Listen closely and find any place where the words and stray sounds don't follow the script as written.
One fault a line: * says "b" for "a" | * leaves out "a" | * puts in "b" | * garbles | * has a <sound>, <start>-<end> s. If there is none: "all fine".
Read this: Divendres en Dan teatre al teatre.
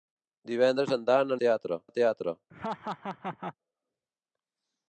* has a laugh, 2.5-3.6 s